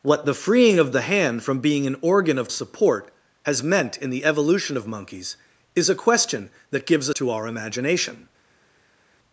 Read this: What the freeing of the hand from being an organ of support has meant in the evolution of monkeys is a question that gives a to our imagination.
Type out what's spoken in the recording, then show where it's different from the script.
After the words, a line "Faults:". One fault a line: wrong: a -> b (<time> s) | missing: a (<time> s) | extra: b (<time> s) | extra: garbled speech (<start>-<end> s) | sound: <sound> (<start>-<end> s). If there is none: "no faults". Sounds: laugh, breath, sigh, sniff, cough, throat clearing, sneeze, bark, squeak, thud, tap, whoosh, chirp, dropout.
What the freeing of the hand from being an organ of support has meant in the evolution of monkeys is a question that gives a to our imagination.
Faults:
no faults